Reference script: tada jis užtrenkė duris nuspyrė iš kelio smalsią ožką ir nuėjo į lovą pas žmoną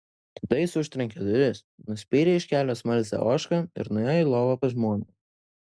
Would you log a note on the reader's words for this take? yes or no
no